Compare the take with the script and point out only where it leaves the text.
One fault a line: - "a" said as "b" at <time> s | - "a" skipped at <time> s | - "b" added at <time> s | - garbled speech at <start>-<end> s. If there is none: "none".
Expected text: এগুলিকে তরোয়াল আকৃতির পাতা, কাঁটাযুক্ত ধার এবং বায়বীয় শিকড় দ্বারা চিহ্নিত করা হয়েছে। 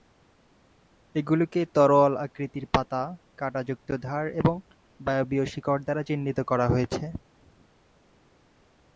none